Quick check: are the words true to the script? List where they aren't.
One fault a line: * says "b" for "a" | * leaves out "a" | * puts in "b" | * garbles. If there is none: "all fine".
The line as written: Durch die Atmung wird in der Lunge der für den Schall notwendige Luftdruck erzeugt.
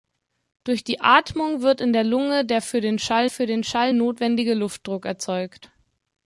* puts in "für den Schall"